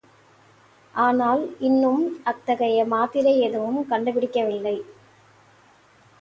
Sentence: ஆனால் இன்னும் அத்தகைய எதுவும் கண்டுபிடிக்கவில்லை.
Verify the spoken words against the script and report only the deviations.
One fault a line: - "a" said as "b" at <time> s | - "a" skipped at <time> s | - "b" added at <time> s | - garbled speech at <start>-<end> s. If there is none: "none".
- "மாத்திரை" added at 2.9 s